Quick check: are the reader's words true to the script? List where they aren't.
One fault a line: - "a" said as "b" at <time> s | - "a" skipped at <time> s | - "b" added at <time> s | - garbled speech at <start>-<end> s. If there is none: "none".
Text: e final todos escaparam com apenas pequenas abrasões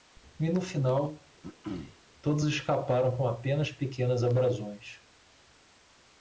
- "no" added at 0.5 s